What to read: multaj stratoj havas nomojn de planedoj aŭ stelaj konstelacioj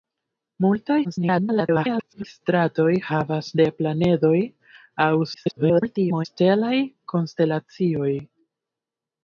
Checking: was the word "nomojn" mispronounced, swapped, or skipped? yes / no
yes